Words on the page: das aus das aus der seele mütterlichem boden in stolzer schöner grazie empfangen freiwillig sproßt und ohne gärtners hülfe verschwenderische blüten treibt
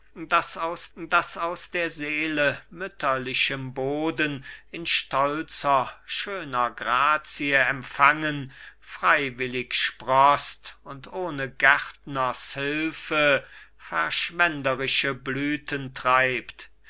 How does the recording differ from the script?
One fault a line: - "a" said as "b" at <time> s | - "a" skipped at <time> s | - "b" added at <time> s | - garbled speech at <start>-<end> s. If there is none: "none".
none